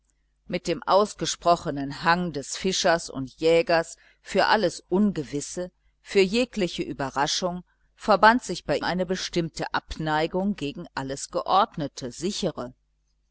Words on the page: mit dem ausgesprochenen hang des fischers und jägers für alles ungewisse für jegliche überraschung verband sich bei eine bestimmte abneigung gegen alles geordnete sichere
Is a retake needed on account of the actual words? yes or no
no